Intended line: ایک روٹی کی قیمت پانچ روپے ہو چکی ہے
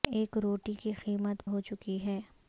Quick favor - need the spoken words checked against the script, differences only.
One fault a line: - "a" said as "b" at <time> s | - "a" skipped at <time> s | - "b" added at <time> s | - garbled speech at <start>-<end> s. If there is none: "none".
- "پانچ روپے" skipped at 1.4 s